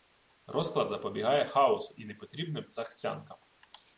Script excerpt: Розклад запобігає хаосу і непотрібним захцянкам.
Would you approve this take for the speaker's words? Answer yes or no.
yes